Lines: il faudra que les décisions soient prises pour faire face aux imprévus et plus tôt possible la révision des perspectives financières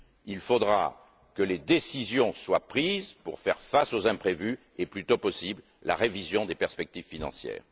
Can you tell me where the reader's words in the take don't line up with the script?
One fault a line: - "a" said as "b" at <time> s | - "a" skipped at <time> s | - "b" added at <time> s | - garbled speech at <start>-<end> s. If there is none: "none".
none